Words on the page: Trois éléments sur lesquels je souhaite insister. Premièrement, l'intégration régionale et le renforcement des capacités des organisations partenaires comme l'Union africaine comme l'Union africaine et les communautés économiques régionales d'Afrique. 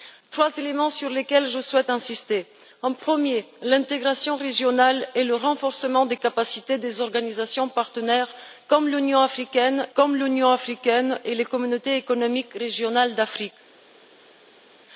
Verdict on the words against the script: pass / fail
pass